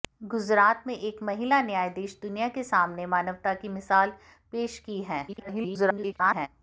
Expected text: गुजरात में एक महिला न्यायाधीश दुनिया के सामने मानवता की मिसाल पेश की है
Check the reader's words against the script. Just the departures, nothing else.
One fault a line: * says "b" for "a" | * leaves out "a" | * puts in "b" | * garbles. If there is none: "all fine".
* garbles